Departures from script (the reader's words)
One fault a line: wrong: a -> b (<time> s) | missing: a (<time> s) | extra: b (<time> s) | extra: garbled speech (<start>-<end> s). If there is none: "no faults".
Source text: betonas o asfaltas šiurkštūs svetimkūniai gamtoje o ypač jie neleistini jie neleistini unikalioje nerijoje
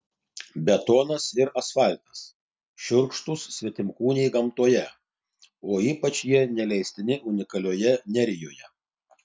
wrong: o -> ir (1.4 s)
missing: jie neleistini (7.2 s)